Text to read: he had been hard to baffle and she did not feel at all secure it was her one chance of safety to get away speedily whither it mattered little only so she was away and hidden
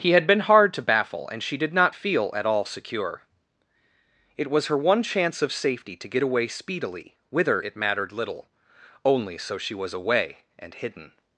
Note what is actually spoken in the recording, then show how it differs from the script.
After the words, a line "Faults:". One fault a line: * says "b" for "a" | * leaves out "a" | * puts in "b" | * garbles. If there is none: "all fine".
he had been hard to baffle and she did not feel at all secure it was her one chance of safety to get away speedily whither it mattered little only so she was away and hidden
Faults:
all fine